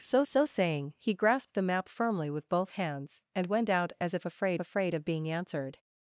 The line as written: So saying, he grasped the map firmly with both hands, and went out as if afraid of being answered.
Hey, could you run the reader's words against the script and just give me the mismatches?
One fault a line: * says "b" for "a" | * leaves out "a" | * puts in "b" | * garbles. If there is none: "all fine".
* puts in "so"
* puts in "afraid"